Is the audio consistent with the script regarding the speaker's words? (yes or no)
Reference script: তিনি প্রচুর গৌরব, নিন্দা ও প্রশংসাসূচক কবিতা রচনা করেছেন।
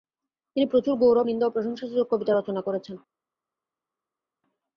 yes